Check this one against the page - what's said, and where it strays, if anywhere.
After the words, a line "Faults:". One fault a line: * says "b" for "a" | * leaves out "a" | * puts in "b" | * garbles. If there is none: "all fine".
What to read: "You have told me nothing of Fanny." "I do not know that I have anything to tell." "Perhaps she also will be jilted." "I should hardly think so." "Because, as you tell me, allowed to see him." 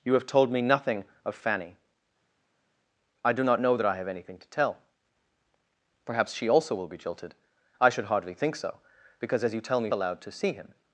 "You have told me nothing of Fanny." "I do not know that I have anything to tell." "Perhaps she also will be jilted." "I should hardly think so." "Because, as you tell me, allowed to see him."
Faults:
all fine